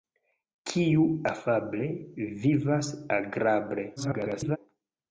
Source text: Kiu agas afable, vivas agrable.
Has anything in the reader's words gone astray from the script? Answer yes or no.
yes